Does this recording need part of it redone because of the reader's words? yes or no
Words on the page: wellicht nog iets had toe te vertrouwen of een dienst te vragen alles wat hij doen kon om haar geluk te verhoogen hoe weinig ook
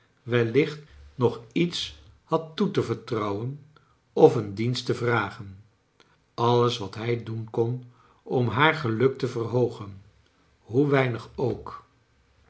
no